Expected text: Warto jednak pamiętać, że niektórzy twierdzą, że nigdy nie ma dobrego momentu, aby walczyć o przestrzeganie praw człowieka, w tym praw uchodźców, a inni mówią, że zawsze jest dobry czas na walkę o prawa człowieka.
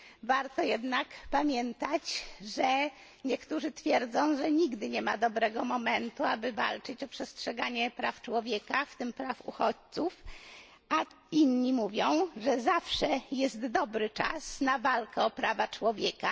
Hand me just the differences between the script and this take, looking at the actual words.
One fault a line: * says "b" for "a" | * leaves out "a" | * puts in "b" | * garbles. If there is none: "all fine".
all fine